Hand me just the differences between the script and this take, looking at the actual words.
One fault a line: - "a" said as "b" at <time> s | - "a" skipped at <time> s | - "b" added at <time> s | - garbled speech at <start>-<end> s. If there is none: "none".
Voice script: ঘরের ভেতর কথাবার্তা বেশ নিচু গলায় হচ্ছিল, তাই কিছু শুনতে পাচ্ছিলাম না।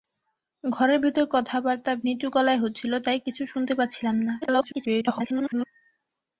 - "বেশ" skipped at 1.9 s
- garbled speech at 4.4-5.7 s